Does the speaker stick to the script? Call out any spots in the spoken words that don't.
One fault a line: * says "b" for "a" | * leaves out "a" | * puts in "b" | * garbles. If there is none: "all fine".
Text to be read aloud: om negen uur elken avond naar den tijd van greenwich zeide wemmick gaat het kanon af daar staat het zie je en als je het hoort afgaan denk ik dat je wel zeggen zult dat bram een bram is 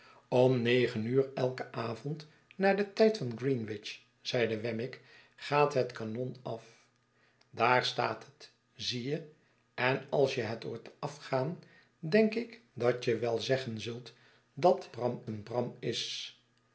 all fine